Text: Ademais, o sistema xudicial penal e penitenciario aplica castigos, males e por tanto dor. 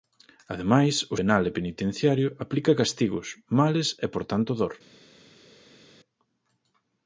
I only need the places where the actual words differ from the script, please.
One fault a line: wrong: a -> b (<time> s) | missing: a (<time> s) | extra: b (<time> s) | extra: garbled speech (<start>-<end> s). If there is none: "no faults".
missing: sistema xudicial (1.2 s)